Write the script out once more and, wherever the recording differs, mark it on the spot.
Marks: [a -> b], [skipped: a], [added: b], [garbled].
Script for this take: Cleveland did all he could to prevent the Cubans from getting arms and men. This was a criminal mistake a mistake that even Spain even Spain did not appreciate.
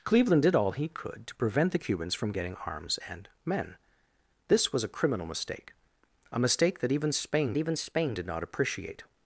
Cleveland did all he could to prevent the Cubans from getting arms and men. This was a criminal mistake a mistake that even Spain even Spain did not appreciate.